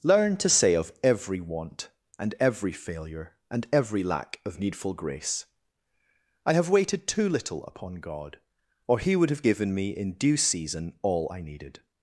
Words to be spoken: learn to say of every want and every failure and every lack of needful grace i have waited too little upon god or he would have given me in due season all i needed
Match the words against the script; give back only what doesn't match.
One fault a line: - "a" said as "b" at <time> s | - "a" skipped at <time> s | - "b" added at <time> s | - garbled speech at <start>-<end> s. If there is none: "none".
none